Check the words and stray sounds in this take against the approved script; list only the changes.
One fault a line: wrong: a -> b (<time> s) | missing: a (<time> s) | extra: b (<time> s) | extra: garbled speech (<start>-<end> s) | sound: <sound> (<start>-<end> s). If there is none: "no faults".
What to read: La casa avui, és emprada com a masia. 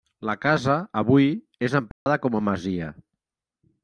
sound: dropout (1.9-2.1 s)